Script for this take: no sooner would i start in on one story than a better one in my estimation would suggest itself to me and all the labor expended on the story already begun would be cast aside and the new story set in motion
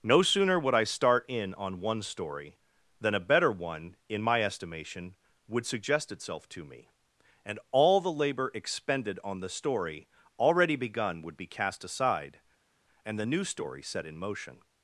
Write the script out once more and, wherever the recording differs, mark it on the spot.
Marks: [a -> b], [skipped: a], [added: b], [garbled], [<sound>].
no sooner would i start in on one story than a better one in my estimation would suggest itself to me and all the labor expended on the story already begun would be cast aside and the new story set in motion